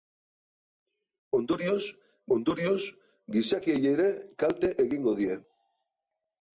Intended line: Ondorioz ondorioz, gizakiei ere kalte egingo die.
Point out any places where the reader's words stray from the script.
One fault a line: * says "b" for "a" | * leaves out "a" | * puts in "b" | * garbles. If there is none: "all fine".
all fine